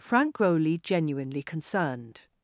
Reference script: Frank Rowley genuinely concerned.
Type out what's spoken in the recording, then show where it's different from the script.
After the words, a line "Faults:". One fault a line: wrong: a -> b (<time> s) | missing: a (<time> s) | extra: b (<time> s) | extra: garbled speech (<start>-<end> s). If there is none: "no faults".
Frank Rowley genuinely concerned.
Faults:
no faults